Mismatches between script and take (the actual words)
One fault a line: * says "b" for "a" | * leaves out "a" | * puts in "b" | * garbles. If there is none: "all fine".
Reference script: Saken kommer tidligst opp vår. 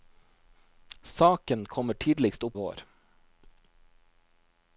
all fine